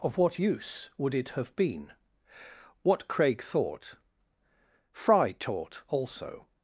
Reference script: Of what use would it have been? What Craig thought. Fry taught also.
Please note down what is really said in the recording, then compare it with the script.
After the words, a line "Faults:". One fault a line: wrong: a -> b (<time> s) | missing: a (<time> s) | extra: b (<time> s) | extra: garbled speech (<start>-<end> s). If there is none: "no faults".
Of what use would it have been? What Craig thought. Fry taught also.
Faults:
no faults